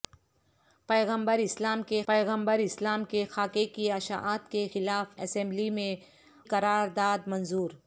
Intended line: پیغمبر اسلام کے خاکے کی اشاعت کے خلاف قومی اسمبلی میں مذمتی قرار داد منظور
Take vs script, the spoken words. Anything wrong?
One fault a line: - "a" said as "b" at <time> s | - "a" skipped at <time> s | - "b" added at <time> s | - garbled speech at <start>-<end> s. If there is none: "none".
- "پیغمبر اسلام کے" added at 2.1 s
- "قومی" skipped at 5.2 s
- "مذمتی" skipped at 5.9 s